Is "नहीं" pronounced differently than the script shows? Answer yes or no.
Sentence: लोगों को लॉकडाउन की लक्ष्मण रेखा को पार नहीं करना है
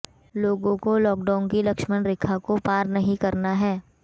no